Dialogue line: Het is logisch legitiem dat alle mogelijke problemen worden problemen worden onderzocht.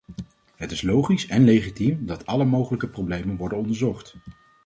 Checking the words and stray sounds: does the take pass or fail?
fail